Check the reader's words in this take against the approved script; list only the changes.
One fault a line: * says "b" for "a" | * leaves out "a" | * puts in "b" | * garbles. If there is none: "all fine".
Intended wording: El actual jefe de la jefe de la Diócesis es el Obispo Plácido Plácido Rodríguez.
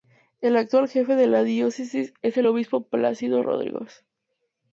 * leaves out "jefe de la"
* leaves out "Plácido"